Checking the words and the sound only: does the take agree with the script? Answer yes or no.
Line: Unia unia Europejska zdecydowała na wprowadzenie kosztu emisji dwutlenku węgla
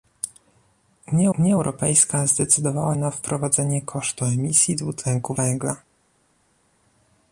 yes